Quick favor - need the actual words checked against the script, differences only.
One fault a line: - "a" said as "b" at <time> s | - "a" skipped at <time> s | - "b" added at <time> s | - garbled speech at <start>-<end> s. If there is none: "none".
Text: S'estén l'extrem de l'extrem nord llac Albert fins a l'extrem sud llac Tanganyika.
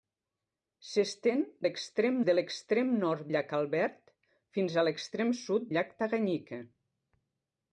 none